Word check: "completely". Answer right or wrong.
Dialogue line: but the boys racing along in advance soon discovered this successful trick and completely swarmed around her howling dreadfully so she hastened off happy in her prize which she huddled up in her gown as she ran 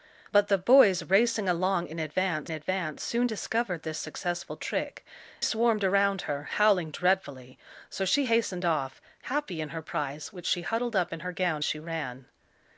wrong